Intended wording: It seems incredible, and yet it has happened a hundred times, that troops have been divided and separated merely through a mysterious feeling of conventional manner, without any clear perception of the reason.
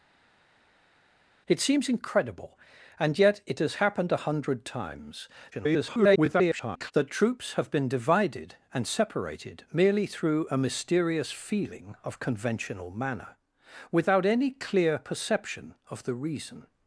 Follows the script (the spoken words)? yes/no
no